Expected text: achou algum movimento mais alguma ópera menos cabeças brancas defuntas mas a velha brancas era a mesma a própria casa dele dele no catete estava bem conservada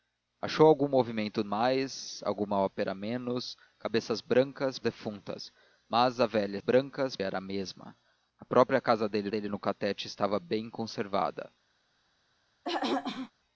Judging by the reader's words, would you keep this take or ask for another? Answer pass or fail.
pass